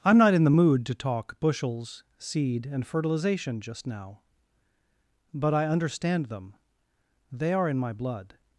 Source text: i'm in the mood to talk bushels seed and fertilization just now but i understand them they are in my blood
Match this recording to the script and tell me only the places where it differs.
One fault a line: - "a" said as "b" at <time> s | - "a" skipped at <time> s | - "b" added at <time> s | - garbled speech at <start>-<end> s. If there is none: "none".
- "not" added at 0.2 s